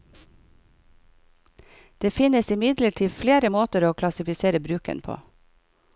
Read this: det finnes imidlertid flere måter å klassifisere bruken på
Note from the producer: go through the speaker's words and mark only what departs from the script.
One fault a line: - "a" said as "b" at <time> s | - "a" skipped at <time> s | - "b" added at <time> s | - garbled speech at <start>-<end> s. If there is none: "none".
none